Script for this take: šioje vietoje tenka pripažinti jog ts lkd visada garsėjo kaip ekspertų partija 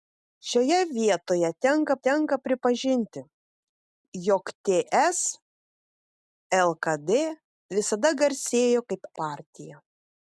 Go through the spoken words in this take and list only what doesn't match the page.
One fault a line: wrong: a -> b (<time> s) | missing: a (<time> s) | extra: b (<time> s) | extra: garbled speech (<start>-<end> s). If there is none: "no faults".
extra: tenka (2.1 s)
missing: ekspertų (9.1 s)